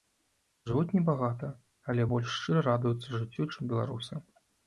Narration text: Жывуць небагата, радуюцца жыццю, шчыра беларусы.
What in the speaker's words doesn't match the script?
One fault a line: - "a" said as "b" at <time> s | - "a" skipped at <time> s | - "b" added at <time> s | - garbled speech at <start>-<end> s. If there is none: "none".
- "але больш шчыра" added at 1.9 s
- "шчыра" said as "чым" at 3.5 s